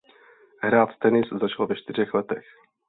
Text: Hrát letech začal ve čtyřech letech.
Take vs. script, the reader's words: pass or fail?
fail